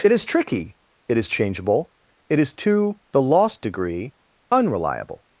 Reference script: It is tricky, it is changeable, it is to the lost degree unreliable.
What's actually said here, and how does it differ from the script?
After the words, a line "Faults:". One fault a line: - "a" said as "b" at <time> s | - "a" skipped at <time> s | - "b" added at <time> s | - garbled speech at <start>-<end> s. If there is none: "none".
It is tricky, it is changeable, it is to the lost degree unreliable.
Faults:
none